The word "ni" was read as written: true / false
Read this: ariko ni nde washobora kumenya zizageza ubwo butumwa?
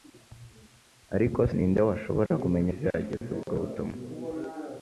true